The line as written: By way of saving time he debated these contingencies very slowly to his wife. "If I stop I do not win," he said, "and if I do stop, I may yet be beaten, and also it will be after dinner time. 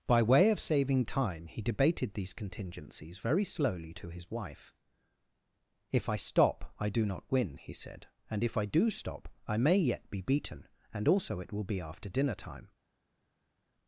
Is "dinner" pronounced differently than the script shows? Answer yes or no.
no